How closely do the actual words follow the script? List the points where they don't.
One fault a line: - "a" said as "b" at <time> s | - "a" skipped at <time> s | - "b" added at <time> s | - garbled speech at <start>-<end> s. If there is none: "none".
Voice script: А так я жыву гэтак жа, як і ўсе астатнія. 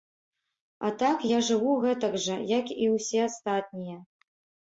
none